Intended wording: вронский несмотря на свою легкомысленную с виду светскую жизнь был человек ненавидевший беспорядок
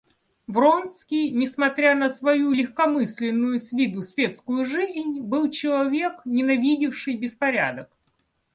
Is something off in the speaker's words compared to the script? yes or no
no